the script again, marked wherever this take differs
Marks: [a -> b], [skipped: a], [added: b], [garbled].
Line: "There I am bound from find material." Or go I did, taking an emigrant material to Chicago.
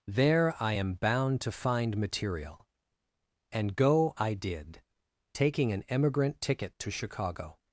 "There I am bound [from -> to] find material." [Or -> And] go I did, taking an emigrant [material -> ticket] to Chicago.